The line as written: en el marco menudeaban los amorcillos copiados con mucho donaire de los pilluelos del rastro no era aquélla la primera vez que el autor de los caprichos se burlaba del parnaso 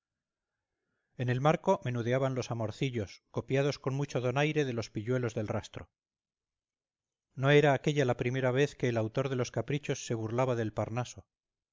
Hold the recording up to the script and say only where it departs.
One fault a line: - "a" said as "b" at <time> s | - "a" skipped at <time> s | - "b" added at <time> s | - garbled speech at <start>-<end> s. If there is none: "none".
none